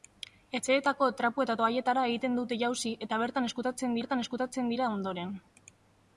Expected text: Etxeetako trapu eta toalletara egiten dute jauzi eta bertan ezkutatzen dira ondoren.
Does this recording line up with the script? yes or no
no